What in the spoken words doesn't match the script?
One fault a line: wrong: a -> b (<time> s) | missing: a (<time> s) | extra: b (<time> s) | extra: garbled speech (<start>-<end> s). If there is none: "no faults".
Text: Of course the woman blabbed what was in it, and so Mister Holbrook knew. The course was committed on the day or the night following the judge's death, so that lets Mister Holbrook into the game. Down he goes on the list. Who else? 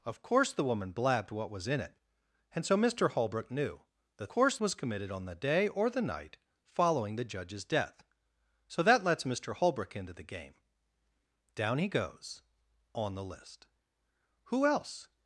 no faults